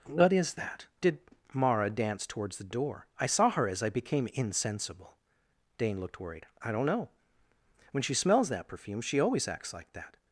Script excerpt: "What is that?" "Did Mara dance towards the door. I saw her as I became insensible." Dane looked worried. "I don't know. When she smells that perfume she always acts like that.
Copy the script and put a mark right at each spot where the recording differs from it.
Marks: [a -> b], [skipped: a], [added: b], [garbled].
"What is that?" "Did Mara dance towards the door. I saw her as I became insensible." Dane looked worried. "I don't know. When she smells that perfume she always acts like that.